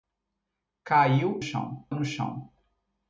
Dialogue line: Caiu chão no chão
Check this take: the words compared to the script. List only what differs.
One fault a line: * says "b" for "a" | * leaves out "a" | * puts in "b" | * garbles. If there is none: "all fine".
all fine